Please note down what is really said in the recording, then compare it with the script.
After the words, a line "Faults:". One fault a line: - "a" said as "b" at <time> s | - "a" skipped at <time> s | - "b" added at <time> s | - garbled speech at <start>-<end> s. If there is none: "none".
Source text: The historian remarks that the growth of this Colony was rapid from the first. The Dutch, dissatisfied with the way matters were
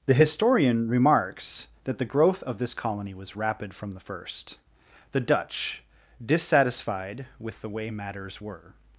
The historian remarks that the growth of this Colony was rapid from the first. The Dutch, dissatisfied with the way matters were
Faults:
none